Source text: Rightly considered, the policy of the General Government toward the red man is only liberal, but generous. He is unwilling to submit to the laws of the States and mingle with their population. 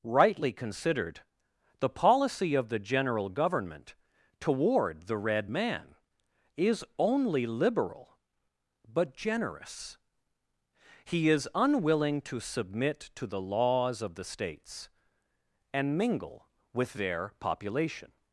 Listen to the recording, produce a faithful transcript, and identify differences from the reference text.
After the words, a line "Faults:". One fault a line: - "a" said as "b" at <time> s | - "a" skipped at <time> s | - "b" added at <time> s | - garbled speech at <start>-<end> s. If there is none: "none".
Rightly considered, the policy of the General Government toward the red man is only liberal, but generous. He is unwilling to submit to the laws of the States and mingle with their population.
Faults:
none